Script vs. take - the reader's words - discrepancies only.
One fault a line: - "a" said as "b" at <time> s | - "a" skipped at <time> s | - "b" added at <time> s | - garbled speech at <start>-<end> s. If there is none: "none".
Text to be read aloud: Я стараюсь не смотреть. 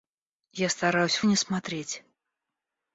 none